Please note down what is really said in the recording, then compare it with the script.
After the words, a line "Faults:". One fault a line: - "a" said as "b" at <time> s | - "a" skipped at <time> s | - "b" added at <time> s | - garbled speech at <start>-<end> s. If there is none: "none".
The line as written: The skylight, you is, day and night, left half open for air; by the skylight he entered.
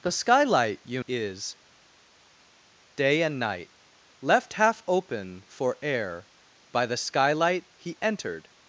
The skylight, you is, day and night, left half open for air; by the skylight he entered.
Faults:
none